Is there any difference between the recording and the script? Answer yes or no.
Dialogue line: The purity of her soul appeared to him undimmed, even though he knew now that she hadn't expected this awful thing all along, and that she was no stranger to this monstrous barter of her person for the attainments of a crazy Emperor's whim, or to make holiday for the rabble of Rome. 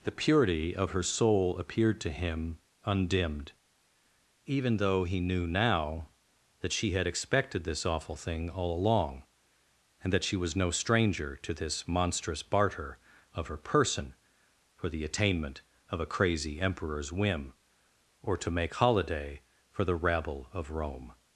yes